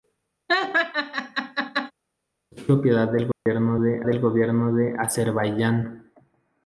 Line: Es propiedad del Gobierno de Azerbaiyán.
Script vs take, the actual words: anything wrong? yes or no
yes